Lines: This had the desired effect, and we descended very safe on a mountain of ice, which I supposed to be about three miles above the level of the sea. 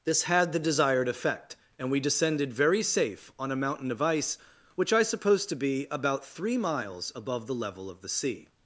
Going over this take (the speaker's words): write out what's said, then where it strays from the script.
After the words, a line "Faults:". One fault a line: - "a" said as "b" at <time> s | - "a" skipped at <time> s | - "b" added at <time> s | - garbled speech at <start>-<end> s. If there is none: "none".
This had the desired effect, and we descended very safe on a mountain of ice, which I supposed to be about three miles above the level of the sea.
Faults:
none